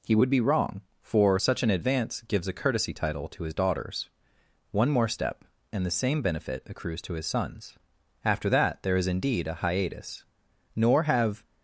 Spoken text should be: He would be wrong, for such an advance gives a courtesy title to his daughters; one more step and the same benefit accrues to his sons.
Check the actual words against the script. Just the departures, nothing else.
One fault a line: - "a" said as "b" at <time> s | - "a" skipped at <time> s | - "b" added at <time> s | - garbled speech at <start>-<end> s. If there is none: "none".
- "After that there is indeed a hiatus nor have" added at 8.2 s